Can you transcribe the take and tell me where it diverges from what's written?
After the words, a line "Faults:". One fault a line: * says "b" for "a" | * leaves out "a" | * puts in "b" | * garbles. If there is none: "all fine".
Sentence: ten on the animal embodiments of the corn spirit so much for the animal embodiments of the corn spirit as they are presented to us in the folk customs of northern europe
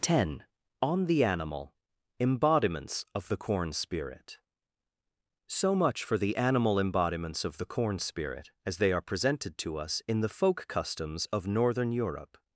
ten on the animal embodiments of the corn spirit so much for the animal embodiments of the corn spirit as they are presented to us in the folk customs of northern europe
Faults:
all fine